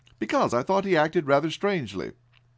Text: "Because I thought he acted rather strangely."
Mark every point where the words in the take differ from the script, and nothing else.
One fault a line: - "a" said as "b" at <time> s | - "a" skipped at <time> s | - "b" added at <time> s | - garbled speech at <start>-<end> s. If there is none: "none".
none